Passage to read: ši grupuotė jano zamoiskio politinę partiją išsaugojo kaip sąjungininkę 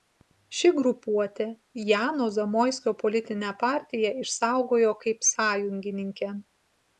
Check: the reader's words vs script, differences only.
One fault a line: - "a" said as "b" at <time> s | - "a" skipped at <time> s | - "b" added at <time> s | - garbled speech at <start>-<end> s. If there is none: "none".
none